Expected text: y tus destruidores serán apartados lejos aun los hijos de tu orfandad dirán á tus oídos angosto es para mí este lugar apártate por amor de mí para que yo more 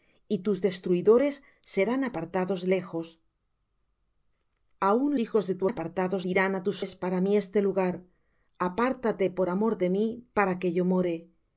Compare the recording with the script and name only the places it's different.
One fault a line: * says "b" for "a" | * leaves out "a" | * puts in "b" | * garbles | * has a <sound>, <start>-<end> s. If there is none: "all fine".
* leaves out "los"
* says "apartados" for "orfandad"
* leaves out "oídos angosto"